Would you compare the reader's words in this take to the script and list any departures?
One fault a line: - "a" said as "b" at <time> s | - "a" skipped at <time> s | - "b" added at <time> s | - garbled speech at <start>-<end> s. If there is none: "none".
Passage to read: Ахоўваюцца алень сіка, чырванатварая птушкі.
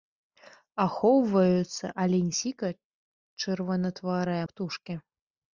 none